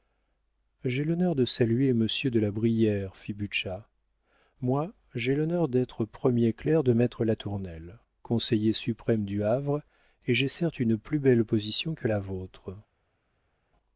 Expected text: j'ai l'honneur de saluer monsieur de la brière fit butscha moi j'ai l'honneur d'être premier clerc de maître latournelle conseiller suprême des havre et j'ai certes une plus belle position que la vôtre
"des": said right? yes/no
no